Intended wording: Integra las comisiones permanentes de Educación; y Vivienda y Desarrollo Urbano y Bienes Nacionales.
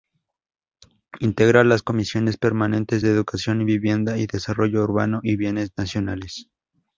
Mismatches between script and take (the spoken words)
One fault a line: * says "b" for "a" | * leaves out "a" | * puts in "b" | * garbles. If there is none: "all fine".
all fine